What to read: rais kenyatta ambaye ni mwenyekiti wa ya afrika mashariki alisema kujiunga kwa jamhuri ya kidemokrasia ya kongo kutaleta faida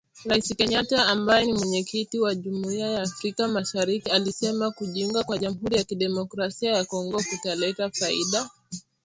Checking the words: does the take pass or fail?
fail